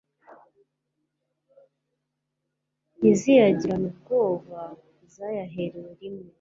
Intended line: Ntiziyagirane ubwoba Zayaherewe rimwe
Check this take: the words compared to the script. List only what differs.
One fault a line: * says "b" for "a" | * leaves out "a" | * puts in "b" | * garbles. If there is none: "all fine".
all fine